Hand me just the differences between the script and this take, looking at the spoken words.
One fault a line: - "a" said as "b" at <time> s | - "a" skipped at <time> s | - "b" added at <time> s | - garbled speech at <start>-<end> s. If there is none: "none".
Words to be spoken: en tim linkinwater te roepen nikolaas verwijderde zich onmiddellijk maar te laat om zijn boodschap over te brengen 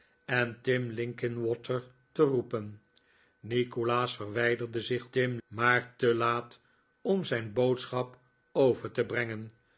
- "onmiddellijk" said as "tim" at 5.1 s